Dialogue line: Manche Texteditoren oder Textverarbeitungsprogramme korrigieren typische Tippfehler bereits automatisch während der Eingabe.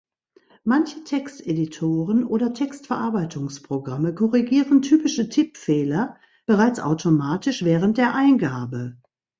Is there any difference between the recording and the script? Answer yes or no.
no